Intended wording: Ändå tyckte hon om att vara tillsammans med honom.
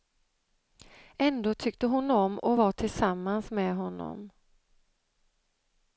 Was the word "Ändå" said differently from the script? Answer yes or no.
no